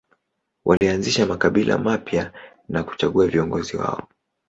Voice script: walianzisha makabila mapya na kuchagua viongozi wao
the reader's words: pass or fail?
pass